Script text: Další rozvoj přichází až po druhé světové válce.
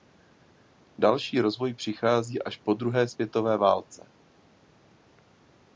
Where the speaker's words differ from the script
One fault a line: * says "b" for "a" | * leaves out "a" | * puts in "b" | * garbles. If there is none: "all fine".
all fine